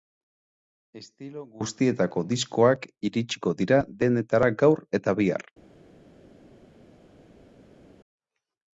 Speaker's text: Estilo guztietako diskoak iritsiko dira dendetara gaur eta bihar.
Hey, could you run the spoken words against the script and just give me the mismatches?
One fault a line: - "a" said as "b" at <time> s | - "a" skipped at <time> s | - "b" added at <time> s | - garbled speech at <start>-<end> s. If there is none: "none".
none